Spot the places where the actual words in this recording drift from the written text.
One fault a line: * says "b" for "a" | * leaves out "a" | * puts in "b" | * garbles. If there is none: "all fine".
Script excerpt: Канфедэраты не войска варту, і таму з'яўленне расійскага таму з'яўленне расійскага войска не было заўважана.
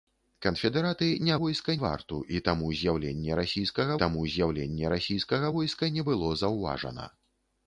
all fine